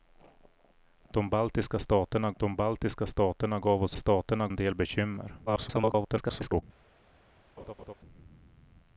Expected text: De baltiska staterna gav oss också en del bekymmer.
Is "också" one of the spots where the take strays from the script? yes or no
yes